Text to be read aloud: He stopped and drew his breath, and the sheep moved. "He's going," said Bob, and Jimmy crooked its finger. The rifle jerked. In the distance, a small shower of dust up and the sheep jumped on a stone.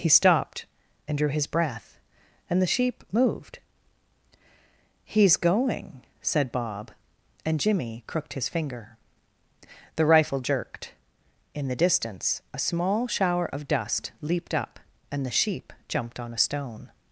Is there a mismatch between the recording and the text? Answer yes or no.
yes